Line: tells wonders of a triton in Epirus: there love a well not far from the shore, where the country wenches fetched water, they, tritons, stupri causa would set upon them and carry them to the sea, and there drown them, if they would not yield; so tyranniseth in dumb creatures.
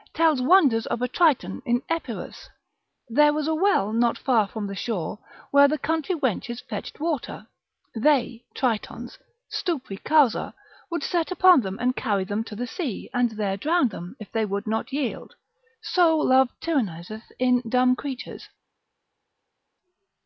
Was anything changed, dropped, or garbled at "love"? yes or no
yes